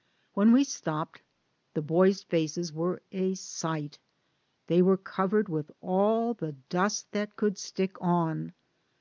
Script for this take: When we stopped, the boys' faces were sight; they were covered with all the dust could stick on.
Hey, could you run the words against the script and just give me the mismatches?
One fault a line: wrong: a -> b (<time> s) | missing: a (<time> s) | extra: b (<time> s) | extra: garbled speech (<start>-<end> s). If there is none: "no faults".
extra: a (3.1 s)
extra: that (7.1 s)